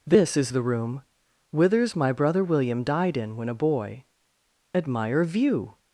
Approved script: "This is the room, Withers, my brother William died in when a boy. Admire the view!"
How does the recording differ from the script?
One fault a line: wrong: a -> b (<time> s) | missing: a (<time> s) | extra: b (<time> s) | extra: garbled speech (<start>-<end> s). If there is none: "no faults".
missing: the (5.2 s)